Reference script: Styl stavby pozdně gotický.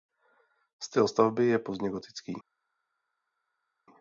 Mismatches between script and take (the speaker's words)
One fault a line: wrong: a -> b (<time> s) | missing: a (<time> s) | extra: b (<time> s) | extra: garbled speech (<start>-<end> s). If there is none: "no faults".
extra: je (1.4 s)